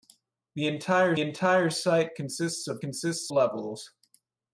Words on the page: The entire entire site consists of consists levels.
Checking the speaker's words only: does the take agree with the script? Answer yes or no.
yes